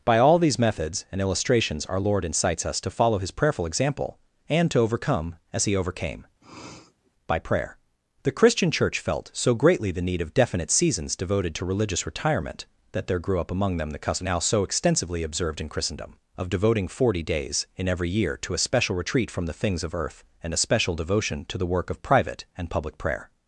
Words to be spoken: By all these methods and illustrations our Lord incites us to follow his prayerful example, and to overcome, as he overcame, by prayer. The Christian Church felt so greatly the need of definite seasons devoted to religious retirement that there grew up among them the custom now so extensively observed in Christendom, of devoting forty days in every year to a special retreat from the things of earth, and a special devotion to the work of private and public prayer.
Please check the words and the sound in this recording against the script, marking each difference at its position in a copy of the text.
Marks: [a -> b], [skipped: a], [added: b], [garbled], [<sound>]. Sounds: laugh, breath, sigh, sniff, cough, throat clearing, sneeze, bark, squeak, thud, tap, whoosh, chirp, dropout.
By all these methods and illustrations our Lord incites us to follow his prayerful example, and to overcome, as he overcame, [sniff] by prayer. The Christian Church felt so greatly the need of definite seasons devoted to religious retirement that there grew up among them the custom now so extensively observed in Christendom, of devoting forty days in every year to a special retreat from the things of earth, and a special devotion to the work of private and public prayer.